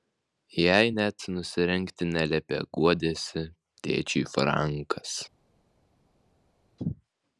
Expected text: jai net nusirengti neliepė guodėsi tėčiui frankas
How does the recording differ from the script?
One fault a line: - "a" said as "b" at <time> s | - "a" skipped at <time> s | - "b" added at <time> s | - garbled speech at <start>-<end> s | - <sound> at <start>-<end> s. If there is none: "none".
none